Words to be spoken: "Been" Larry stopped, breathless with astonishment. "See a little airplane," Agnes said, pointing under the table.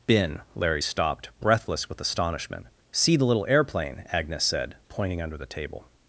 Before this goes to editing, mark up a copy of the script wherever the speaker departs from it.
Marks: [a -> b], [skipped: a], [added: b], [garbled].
"Been" Larry stopped, breathless with astonishment. "See [a -> the] little airplane," Agnes said, pointing under the table.